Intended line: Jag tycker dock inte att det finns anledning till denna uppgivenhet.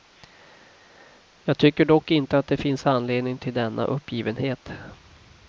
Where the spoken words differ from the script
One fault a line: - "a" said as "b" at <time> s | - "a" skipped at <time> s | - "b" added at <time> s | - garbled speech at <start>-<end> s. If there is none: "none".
none